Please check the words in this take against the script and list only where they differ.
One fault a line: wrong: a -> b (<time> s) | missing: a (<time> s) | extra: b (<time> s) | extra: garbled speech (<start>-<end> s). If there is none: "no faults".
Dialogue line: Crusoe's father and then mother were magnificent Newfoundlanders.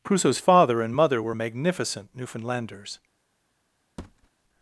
missing: then (0.9 s)